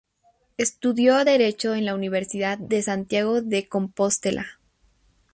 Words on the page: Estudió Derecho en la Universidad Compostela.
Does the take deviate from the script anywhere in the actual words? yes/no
yes